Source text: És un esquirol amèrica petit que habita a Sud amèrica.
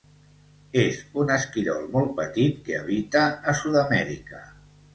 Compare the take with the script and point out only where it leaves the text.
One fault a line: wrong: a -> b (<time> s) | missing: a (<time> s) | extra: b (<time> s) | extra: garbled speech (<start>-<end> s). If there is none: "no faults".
wrong: amèrica -> molt (2.0 s)